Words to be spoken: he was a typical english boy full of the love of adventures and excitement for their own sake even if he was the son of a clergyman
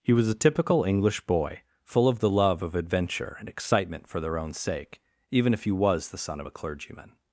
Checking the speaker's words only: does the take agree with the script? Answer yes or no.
no